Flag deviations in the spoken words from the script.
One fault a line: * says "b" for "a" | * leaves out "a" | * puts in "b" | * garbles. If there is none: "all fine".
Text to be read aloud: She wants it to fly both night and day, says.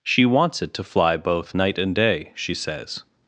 * puts in "she"